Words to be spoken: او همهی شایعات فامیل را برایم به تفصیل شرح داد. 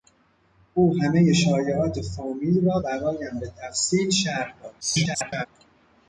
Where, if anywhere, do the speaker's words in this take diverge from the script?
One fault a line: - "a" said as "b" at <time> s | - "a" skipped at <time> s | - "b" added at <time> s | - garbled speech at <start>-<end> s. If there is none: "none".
- garbled speech at 4.8-5.5 s